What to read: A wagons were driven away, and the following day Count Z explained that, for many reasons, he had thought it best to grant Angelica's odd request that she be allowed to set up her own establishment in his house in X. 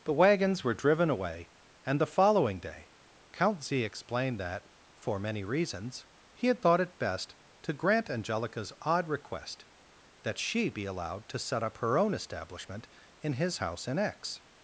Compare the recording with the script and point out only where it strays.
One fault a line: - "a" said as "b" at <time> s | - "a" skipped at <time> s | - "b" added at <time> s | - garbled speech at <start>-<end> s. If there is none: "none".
- "A" said as "The" at 0.0 s